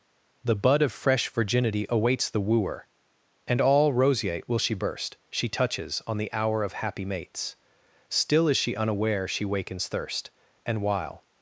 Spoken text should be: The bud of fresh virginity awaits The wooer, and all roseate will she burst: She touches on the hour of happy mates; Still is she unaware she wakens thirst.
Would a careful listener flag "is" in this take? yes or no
no